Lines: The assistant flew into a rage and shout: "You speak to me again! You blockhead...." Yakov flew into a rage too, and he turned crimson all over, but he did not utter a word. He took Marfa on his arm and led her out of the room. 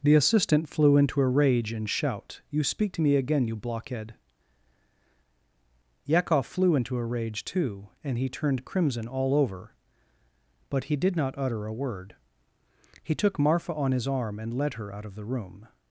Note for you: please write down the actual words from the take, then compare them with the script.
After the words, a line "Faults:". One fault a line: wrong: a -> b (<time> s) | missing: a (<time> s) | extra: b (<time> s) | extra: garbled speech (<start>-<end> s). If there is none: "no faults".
The assistant flew into a rage and shout: "You speak to me again! You blockhead...." Yakov flew into a rage too, and he turned crimson all over, but he did not utter a word. He took Marfa on his arm and led her out of the room.
Faults:
no faults